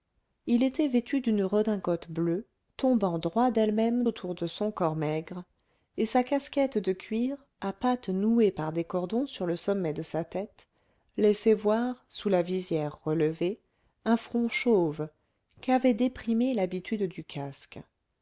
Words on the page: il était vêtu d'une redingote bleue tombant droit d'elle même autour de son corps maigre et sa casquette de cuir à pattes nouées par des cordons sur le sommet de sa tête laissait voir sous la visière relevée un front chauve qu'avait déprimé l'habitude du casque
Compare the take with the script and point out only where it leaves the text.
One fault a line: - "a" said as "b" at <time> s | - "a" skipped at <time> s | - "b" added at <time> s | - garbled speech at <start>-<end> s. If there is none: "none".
none